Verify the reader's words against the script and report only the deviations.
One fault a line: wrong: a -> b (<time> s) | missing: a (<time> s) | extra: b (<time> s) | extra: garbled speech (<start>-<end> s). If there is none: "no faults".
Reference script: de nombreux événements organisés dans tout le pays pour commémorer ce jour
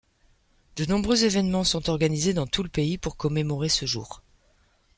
extra: sont (1.6 s)